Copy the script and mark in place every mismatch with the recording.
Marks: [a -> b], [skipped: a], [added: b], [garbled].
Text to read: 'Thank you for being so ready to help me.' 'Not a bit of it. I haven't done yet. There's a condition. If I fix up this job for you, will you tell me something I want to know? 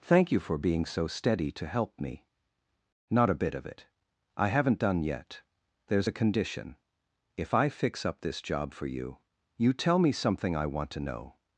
'Thank you for being so [ready -> steady] to help me.' 'Not a bit of it. I haven't done yet. There's a condition. If I fix up this job for you, [skipped: will] you tell me something I want to know?